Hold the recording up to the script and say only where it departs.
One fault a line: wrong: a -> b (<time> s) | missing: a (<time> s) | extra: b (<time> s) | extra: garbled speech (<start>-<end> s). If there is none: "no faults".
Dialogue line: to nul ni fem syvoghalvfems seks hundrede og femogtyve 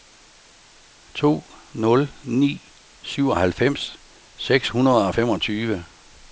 missing: fem (2.7 s)